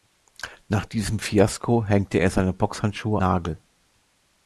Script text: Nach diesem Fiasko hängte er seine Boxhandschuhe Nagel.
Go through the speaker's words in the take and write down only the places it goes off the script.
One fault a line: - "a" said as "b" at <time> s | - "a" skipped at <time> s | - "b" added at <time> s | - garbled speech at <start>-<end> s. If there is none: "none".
none